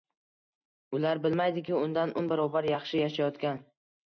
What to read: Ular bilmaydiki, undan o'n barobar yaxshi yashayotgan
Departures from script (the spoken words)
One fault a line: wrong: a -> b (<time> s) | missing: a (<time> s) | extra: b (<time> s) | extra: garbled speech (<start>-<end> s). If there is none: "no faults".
no faults